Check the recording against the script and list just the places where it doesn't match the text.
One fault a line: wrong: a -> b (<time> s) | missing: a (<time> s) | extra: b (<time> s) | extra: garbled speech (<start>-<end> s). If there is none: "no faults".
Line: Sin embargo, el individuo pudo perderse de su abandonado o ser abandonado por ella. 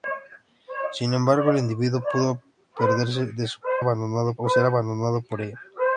no faults